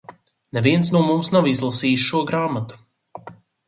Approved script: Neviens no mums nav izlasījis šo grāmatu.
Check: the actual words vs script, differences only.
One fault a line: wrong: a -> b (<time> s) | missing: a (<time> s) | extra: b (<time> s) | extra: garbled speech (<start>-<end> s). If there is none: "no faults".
no faults